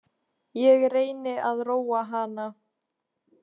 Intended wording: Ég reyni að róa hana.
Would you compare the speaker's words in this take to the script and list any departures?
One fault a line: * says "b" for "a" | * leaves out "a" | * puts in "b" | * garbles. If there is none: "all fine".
all fine